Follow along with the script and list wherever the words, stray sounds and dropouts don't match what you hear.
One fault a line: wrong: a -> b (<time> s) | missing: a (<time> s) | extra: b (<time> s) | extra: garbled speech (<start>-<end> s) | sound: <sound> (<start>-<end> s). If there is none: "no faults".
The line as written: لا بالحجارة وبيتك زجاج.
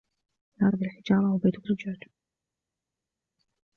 no faults